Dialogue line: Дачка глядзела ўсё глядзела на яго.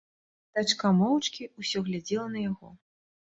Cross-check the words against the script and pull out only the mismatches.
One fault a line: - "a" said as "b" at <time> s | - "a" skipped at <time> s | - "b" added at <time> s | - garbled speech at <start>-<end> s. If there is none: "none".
- "глядзела" said as "моўчкі" at 1.0 s